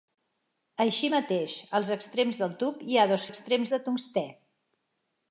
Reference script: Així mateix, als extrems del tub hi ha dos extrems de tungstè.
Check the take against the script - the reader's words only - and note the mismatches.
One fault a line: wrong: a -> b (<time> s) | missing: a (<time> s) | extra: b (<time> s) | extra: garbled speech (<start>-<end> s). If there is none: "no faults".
no faults